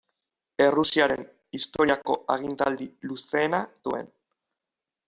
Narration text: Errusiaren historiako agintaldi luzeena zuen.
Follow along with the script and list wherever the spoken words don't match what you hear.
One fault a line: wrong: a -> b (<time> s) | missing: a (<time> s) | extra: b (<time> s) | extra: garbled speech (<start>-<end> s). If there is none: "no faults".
no faults